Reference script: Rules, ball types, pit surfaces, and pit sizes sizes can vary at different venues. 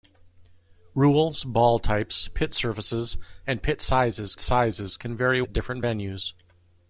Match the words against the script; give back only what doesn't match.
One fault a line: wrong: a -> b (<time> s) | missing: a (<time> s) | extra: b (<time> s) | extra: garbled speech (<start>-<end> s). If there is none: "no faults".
no faults